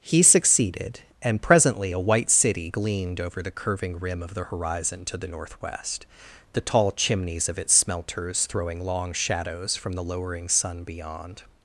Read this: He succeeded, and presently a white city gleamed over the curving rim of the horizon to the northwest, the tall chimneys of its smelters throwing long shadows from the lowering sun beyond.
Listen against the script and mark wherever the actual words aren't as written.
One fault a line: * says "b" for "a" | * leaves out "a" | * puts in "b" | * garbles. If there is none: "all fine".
all fine